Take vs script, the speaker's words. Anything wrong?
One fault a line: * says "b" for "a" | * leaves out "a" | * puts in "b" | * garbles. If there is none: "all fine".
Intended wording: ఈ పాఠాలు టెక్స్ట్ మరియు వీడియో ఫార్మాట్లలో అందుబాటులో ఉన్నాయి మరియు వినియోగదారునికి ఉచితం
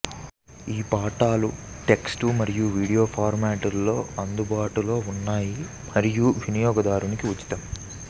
all fine